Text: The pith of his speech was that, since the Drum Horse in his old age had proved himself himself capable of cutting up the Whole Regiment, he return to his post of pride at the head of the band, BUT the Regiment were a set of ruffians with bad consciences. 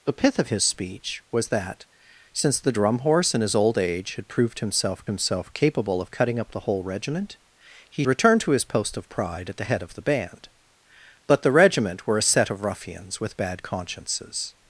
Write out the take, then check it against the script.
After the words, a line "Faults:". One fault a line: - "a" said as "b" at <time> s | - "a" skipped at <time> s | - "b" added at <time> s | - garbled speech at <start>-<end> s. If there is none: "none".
The pith of his speech was that, since the Drum Horse in his old age had proved himself himself capable of cutting up the Whole Regiment, he return to his post of pride at the head of the band, BUT the Regiment were a set of ruffians with bad consciences.
Faults:
none